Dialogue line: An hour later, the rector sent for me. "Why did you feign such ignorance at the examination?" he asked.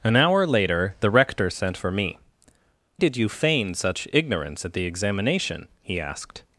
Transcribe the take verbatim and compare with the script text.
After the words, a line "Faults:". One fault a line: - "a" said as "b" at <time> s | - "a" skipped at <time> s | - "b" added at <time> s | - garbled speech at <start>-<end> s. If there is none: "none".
An hour later, the rector sent for me. "Did you feign such ignorance at the examination?" he asked.
Faults:
- "Why" skipped at 2.2 s